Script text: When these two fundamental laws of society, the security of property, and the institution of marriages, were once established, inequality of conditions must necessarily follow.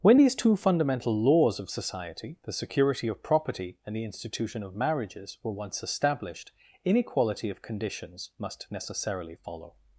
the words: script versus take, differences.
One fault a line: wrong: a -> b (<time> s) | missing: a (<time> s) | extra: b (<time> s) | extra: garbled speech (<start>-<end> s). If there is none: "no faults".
no faults